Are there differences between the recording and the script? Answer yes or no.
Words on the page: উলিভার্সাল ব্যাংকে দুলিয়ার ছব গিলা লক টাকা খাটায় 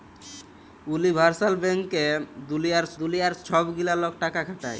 yes